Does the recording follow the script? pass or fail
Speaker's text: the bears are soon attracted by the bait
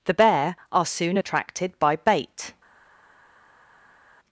fail